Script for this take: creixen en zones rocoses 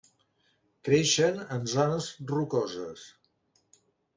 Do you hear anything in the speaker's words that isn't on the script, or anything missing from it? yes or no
no